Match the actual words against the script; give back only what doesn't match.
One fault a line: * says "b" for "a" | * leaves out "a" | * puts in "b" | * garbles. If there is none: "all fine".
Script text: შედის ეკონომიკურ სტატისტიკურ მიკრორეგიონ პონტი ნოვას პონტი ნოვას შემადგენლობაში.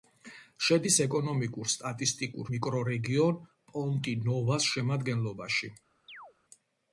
* leaves out "პონტი ნოვას"